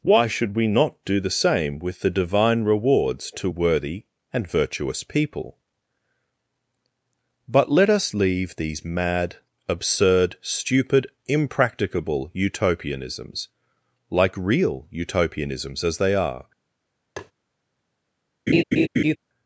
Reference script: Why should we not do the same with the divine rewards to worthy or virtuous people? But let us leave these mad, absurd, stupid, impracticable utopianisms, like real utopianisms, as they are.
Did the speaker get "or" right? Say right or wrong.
wrong